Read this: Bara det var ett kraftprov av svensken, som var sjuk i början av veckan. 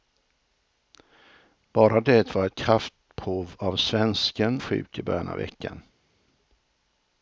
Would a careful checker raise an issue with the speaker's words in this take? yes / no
yes